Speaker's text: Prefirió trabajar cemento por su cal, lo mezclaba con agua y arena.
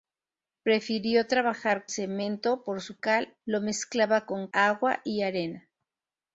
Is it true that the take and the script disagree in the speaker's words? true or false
false